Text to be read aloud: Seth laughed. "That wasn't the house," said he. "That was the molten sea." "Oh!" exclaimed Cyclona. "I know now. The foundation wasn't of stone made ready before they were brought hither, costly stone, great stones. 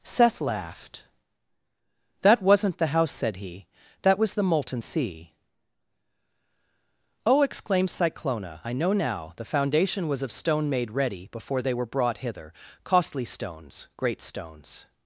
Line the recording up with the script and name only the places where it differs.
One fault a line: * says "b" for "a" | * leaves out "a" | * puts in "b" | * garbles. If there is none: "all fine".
* says "was" for "wasn't"
* says "stones" for "stone"